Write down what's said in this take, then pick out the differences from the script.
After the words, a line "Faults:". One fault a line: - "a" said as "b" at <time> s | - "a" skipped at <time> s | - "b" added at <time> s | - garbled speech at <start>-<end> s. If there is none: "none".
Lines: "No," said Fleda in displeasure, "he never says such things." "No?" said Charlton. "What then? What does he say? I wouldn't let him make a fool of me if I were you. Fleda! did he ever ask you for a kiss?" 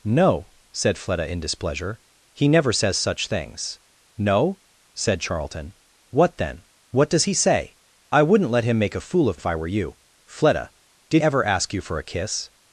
"No," said Fleda in displeasure, "he never says such things." "No?" said Charlton. "What then? What does he say? I wouldn't let him make a fool of if I were you. Fleda! did ever ask you for a kiss?"
Faults:
- "me" skipped at 9.4 s
- "he" skipped at 11.2 s